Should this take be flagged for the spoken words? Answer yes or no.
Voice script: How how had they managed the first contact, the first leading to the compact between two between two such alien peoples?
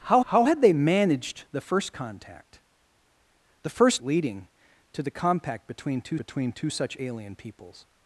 no